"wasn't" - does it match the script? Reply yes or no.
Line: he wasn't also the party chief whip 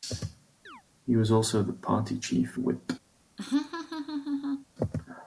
no